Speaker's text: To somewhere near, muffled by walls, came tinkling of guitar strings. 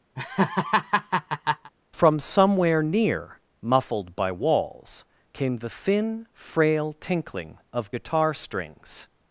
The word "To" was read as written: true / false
false